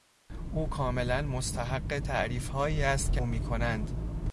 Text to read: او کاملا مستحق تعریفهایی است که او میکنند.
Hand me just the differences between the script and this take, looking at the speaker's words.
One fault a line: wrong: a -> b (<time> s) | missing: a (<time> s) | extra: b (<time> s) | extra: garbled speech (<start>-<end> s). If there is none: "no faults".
no faults